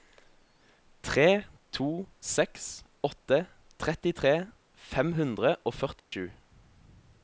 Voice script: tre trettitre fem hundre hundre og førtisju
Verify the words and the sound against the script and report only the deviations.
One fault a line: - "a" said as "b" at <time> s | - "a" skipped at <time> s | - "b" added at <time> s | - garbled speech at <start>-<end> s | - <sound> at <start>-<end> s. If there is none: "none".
- "to seks åtte" added at 1.8 s
- "hundre" skipped at 5.6 s
- dropout at 6.0-6.1 s